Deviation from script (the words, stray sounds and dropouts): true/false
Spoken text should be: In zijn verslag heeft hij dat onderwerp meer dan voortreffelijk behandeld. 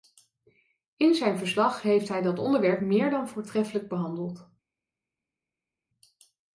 false